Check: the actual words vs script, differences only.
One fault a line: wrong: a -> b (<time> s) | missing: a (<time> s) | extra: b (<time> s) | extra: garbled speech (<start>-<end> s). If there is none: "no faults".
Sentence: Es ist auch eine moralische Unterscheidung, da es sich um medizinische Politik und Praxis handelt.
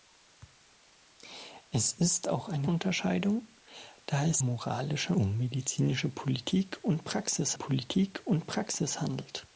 missing: moralische (2.7 s)
wrong: sich -> moralische (4.4 s)
extra: Politik und Praxis (7.5 s)